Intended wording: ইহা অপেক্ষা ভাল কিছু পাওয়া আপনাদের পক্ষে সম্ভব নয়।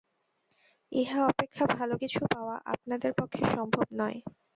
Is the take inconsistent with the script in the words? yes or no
no